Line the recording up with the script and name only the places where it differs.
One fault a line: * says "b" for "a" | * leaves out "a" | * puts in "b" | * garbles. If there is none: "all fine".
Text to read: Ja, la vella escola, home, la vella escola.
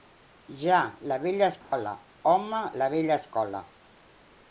all fine